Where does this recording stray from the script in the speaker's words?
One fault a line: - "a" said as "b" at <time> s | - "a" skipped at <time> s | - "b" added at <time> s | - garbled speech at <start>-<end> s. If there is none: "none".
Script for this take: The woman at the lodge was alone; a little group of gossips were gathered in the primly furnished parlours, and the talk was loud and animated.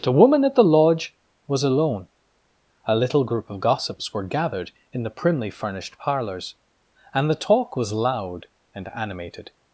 none